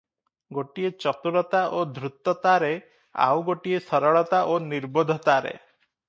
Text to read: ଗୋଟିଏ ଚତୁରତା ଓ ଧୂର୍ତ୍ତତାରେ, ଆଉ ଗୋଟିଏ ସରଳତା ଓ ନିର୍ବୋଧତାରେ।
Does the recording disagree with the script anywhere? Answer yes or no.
no